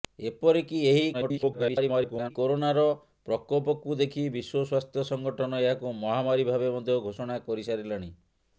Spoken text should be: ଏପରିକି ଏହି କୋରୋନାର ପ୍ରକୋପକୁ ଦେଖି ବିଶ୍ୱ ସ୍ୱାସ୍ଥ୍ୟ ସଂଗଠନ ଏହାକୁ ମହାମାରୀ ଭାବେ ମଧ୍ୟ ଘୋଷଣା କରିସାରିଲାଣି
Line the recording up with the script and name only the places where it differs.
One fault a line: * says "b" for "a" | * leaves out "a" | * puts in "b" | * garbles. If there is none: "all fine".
* garbles